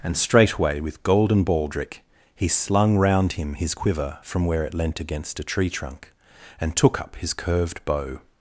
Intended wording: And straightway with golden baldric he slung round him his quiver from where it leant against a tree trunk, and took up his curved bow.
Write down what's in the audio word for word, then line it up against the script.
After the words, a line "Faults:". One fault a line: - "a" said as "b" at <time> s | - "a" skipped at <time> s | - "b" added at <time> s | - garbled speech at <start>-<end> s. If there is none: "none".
And straightway with golden baldric he slung round him his quiver from where it leant against a tree trunk, and took up his curved bow.
Faults:
none